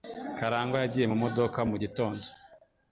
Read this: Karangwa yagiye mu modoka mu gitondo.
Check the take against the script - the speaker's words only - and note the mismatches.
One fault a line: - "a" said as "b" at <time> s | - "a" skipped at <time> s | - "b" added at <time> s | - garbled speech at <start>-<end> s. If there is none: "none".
none